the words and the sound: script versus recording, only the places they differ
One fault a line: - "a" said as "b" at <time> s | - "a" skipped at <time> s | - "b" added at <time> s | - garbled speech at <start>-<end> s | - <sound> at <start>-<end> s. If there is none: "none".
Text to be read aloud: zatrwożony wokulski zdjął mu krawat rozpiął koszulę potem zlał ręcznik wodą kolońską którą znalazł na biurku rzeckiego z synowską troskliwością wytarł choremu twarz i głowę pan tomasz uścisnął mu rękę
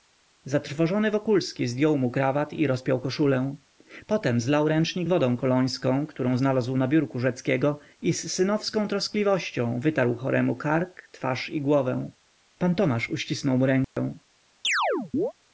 - "i" added at 2.5 s
- "i" added at 8.0 s
- "kark" added at 10.5 s
- dropout at 13.8-14.0 s
- chirp at 14.6-15.3 s